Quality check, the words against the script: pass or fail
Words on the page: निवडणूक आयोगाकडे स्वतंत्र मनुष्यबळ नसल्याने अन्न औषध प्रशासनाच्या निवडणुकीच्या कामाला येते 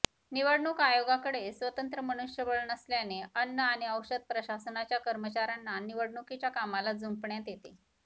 fail